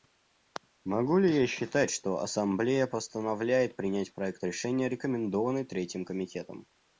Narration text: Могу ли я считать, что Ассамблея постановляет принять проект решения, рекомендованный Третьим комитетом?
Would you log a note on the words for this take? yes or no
no